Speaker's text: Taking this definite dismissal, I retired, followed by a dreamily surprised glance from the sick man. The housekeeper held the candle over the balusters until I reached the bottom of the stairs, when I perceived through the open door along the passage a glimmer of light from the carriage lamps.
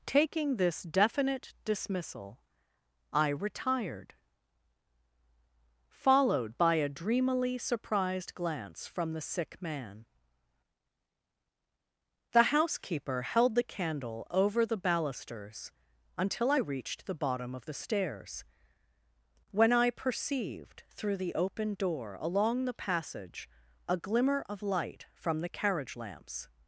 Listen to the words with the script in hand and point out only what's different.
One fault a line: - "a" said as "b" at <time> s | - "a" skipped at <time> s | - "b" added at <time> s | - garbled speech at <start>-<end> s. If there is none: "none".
none